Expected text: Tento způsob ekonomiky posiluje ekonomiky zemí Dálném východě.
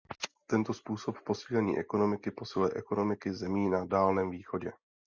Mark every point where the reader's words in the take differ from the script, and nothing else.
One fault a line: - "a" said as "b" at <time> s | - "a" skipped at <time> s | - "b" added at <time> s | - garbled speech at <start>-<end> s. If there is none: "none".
- "posílení" added at 1.2 s
- "na" added at 3.7 s